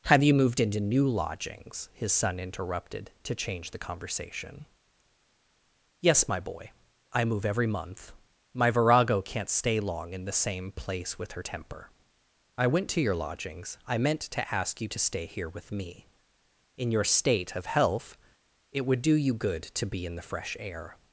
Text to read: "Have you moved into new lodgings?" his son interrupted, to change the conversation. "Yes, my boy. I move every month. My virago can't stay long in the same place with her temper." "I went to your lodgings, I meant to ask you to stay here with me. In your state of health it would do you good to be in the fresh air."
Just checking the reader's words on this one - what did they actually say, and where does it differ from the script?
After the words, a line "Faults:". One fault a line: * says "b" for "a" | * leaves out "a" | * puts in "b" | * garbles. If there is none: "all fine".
"Have you moved into new lodgings?" his son interrupted, to change the conversation. "Yes, my boy. I move every month. My virago can't stay long in the same place with her temper." "I went to your lodgings, I meant to ask you to stay here with me. In your state of health it would do you good to be in the fresh air."
Faults:
all fine